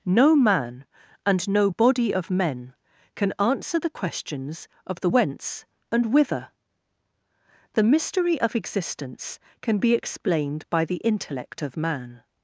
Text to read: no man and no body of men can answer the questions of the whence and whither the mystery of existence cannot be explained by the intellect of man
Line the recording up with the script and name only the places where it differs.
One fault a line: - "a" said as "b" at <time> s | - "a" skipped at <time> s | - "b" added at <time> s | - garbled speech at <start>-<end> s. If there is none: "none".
- "cannot" said as "can" at 9.6 s